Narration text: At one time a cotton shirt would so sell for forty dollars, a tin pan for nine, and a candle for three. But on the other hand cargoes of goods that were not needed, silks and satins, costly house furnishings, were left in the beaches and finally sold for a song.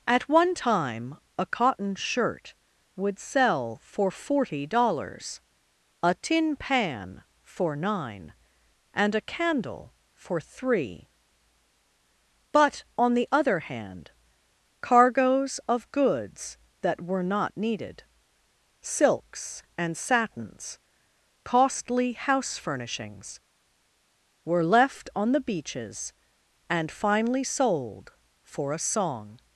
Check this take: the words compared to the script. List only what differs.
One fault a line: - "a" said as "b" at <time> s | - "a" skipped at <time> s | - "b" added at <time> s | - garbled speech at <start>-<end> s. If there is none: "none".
- "so" skipped at 3.2 s
- "in" said as "on" at 25.1 s